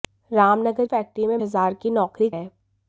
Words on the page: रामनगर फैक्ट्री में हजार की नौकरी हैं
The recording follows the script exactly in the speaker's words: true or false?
true